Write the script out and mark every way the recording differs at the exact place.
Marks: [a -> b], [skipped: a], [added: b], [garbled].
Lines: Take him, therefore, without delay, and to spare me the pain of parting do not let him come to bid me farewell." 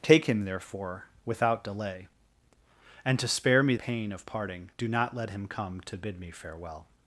Take him, therefore, without delay, and to spare me [skipped: the] pain of parting do not let him come to bid me farewell."